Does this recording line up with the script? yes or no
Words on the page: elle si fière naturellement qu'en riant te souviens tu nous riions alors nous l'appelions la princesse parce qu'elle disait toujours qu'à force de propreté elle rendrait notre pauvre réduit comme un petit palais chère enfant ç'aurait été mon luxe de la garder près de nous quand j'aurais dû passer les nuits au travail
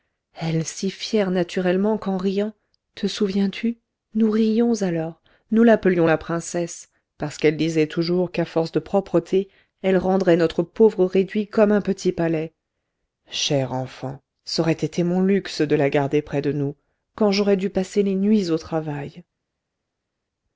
yes